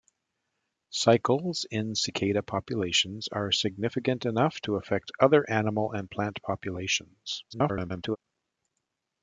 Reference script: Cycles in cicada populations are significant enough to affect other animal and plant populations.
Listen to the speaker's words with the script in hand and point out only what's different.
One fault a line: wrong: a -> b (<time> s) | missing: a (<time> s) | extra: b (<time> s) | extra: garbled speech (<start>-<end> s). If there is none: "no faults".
extra: garbled speech (7.5-8.2 s)